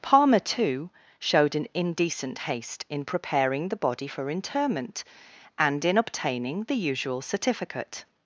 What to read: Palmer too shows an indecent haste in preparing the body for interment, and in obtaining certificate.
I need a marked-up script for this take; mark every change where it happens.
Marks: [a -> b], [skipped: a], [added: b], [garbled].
Palmer too [shows -> showed] an indecent haste in preparing the body for interment, and in obtaining [added: the usual] certificate.